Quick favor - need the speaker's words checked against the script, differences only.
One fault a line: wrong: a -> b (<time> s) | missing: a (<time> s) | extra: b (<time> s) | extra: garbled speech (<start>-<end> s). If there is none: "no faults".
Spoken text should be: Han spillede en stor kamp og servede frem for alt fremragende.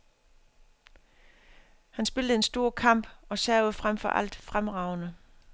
no faults